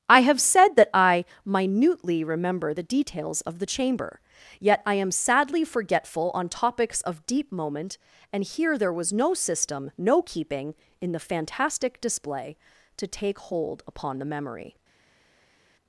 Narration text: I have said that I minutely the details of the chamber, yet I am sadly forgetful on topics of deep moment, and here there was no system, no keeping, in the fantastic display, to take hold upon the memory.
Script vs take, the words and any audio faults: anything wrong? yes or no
yes